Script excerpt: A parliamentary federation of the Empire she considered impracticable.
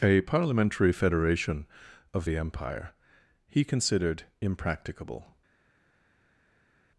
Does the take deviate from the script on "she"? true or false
true